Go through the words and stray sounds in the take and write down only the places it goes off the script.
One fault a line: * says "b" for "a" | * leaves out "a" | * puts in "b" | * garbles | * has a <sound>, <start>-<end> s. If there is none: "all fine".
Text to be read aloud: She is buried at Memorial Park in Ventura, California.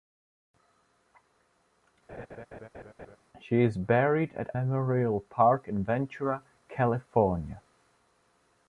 * has a laugh, 2.1-3.2 s